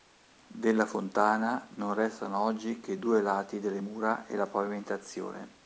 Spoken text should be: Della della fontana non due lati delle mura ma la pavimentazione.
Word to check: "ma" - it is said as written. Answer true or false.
false